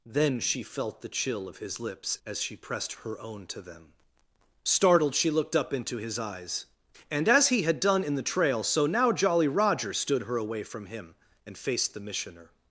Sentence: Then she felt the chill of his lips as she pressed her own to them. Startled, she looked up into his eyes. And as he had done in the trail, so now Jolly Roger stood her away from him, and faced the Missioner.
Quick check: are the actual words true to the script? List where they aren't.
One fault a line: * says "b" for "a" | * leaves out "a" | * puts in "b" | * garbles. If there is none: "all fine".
all fine